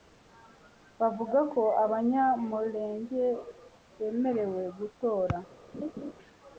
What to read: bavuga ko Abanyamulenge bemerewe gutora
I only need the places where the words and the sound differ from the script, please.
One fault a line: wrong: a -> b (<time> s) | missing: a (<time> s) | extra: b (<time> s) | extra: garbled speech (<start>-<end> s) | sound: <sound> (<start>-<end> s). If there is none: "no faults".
sound: laugh (5.7-6.1 s)